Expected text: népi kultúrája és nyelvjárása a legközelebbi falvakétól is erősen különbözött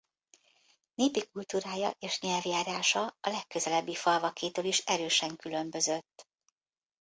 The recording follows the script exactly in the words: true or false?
true